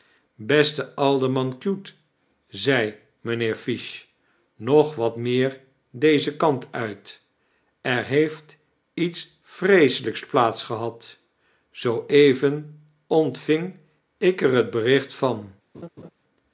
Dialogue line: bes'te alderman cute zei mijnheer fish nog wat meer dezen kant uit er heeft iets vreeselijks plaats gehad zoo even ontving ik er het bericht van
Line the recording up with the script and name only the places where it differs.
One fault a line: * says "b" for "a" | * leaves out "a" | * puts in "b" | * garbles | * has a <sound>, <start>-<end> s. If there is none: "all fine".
* has a laugh, 15.7-16.1 s